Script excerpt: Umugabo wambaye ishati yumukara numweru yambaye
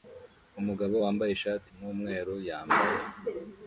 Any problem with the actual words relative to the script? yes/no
yes